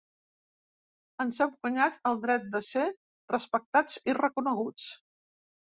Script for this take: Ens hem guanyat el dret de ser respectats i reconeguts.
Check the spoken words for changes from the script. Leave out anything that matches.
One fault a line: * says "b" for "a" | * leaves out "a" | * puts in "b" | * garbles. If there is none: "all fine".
all fine